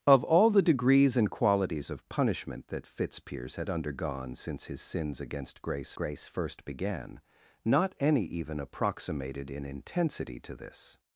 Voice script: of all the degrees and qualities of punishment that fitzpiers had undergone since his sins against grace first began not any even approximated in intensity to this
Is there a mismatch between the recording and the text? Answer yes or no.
yes